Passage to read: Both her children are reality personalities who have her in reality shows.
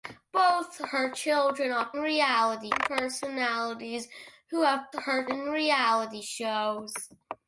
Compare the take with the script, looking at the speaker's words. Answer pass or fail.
pass